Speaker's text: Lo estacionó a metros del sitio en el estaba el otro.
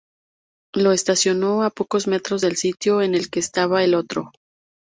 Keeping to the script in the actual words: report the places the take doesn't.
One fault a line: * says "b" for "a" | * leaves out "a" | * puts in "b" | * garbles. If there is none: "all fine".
* puts in "pocos"
* puts in "que"